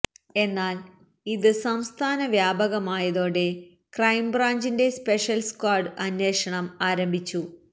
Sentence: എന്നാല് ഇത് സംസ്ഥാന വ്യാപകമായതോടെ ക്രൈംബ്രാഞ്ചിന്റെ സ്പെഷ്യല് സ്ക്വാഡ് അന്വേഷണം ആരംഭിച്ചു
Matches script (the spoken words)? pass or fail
pass